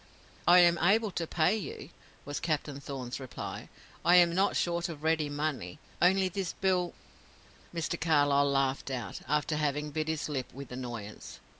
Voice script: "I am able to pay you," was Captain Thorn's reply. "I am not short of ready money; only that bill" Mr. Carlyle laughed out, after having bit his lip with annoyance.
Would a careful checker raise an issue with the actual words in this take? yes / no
yes